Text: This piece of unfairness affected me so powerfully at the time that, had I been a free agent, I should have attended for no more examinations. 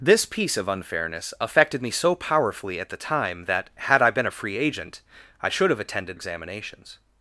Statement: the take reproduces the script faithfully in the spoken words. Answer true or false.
false